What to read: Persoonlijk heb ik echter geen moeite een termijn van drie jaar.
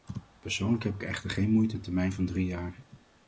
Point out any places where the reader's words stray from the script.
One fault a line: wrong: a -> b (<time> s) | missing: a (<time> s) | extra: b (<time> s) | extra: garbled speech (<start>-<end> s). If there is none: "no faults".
no faults